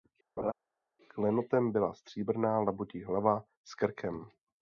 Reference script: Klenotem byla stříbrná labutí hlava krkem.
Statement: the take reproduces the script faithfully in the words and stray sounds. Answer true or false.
false